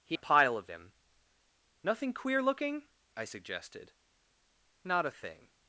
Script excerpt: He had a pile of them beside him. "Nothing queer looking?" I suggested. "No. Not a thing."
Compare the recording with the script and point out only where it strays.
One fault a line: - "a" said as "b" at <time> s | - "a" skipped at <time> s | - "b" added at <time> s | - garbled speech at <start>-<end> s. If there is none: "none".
- "had" skipped at 0.2 s
- "them beside" skipped at 0.7 s
- "No" skipped at 3.9 s